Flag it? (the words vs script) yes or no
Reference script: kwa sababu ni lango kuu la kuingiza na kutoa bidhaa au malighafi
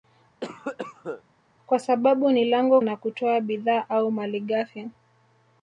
yes